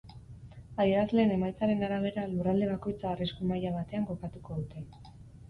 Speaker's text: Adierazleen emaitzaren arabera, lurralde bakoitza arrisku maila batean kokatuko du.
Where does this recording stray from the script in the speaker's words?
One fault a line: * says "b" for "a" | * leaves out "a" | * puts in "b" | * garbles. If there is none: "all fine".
* says "dute" for "du"